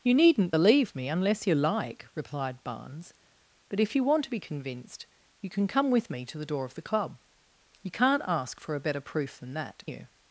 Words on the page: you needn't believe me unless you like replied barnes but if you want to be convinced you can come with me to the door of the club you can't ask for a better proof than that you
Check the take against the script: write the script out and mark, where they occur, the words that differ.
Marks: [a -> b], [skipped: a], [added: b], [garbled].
you needn't believe me unless you like replied barnes but if you want to be convinced you can come with me to the door of the club you can't ask for a better proof than that you